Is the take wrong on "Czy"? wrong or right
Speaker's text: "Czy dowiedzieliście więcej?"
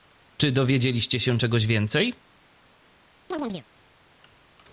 right